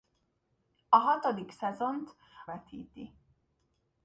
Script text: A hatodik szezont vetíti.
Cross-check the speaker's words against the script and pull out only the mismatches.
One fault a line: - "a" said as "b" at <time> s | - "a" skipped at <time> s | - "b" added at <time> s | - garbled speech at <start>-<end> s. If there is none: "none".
none